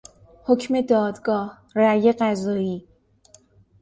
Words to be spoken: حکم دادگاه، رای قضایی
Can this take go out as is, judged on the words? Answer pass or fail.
pass